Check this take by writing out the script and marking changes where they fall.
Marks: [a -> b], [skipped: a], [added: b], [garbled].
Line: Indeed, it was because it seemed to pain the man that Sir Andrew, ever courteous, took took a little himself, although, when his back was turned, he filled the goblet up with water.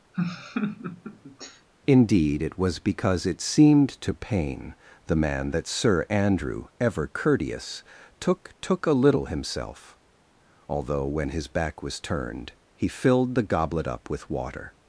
Indeed, it was because it seemed to pain the man that Sir Andrew, ever courteous, took took a little himself, although, when his back was turned, he filled the goblet up with water.